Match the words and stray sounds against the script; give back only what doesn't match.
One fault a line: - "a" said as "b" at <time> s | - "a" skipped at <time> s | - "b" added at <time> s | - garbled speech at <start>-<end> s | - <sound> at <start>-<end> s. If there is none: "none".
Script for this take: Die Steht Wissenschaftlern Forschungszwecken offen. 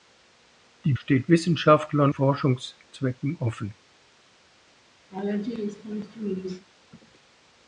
- laugh at 5.1-6.7 s